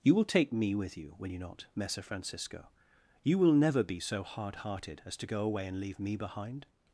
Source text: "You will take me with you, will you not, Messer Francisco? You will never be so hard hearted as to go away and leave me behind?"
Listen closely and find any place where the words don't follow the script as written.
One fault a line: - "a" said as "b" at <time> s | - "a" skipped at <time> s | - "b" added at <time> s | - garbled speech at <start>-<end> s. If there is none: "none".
none